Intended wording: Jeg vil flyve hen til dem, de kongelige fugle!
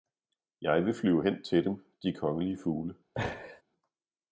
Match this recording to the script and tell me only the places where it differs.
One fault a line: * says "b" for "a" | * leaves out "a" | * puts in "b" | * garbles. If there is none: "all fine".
all fine